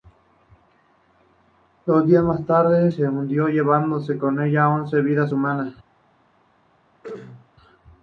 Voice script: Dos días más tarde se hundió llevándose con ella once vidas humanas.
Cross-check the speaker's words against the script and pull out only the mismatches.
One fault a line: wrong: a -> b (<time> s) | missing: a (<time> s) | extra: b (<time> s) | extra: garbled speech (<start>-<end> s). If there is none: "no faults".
no faults